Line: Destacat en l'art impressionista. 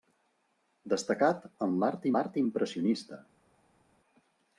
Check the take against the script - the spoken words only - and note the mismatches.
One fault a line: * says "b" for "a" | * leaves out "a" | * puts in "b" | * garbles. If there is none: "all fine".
* puts in "l'art"